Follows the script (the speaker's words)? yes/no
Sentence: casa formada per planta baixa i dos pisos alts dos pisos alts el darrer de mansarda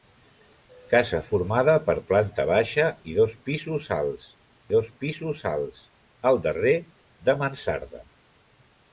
yes